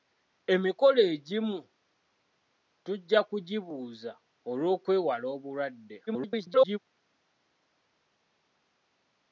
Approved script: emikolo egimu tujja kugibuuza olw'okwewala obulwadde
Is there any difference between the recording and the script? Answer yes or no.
yes